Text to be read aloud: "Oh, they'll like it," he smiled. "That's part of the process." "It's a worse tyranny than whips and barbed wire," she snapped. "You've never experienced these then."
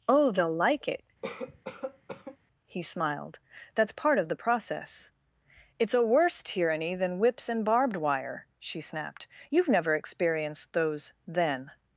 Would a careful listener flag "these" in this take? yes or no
yes